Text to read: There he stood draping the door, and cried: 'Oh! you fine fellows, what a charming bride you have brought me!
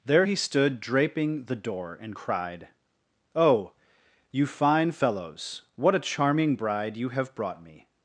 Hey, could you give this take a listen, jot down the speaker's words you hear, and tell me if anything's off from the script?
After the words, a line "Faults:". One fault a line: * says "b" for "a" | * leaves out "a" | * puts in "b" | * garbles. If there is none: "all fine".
There he stood draping the door, and cried: 'Oh! you fine fellows, what a charming bride you have brought me!
Faults:
all fine